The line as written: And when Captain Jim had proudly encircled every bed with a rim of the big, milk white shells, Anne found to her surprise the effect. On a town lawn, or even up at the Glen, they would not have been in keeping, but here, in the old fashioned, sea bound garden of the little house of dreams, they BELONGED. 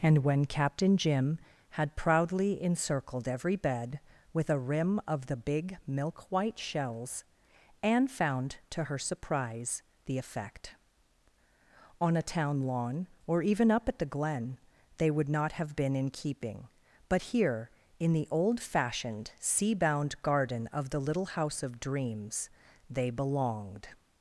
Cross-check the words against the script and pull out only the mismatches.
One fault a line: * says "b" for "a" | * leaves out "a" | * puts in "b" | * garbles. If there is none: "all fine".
all fine